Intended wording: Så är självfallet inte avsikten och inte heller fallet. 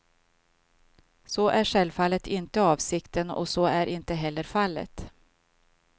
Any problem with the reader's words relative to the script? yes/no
yes